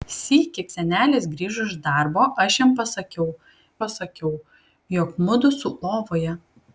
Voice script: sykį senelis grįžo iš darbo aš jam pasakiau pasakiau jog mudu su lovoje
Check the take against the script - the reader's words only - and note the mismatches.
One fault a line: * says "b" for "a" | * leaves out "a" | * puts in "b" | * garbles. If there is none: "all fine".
all fine